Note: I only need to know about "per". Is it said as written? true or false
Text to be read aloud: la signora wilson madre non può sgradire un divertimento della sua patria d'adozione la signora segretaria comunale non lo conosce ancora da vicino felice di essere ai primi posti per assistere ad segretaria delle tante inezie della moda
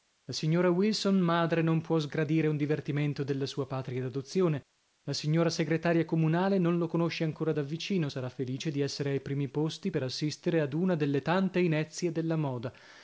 true